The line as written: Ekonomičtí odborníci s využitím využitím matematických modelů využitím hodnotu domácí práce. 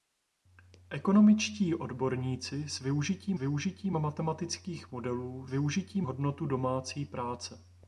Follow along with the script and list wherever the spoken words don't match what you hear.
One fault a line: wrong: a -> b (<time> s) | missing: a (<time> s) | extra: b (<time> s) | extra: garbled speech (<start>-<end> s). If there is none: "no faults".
no faults